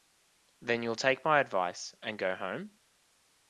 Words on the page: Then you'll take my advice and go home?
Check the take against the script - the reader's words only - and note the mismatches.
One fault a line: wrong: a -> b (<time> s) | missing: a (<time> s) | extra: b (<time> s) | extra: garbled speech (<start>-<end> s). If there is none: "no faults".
no faults